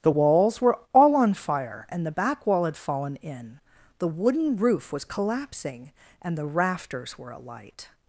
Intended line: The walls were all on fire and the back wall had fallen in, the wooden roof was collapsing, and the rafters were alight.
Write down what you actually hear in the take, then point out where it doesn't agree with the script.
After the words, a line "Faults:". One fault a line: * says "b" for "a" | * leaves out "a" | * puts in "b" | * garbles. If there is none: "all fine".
The walls were all on fire and the back wall had fallen in, the wooden roof was collapsing, and the rafters were alight.
Faults:
all fine